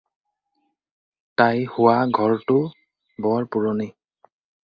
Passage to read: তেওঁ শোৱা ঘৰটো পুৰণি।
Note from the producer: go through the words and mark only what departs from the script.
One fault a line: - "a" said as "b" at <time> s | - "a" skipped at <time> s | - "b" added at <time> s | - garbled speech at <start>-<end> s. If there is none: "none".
- "তেওঁ" said as "তাই" at 1.4 s
- "বৰ" added at 3.2 s